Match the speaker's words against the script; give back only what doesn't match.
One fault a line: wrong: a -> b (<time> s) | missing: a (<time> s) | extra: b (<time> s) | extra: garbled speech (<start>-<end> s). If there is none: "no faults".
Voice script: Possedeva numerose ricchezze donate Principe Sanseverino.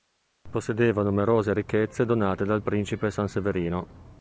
extra: dal (2.4 s)